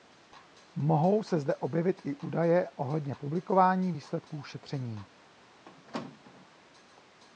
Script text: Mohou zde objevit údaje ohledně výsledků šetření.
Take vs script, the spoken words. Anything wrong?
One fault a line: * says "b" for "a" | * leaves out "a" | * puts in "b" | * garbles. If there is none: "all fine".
* puts in "se"
* puts in "i"
* puts in "publikování"